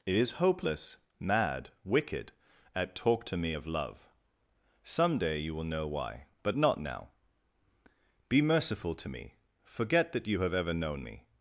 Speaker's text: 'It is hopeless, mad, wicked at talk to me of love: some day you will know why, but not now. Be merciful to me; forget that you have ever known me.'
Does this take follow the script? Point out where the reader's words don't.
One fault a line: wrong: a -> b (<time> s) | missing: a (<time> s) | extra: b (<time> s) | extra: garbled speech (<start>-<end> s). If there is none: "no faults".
no faults